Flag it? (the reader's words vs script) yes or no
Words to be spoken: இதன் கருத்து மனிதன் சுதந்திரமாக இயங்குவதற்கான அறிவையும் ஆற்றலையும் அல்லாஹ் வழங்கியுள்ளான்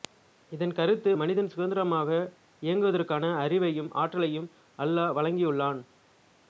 no